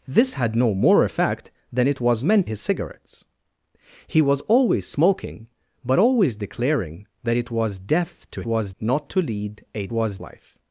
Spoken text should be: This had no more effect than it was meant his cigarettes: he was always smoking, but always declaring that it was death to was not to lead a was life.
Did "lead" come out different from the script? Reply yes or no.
no